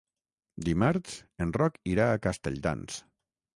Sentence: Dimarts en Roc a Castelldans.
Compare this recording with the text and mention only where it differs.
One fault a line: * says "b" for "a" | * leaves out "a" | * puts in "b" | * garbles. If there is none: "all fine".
* puts in "irà"